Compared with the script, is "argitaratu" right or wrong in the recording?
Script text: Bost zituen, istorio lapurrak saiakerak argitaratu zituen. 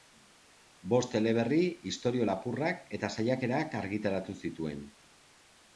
right